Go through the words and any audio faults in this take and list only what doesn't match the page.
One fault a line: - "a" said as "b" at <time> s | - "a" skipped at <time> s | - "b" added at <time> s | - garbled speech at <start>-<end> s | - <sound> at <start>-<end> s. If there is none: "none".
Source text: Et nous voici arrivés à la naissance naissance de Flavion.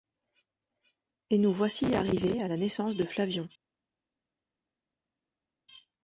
- "naissance" skipped at 3.0 s